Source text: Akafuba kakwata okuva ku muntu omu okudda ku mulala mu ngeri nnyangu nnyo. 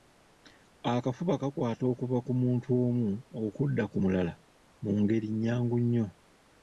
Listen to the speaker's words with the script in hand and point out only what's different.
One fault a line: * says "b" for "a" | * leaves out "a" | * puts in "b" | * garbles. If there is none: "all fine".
all fine